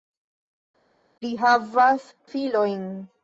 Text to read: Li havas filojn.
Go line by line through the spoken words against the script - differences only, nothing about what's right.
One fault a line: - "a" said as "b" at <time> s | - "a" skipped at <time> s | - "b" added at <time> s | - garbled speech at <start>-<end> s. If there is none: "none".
none